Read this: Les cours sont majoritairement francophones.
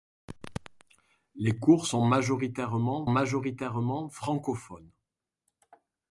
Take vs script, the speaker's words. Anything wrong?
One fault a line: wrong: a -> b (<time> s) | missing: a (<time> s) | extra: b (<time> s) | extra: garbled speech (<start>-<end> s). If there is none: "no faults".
extra: majoritairement (3.1 s)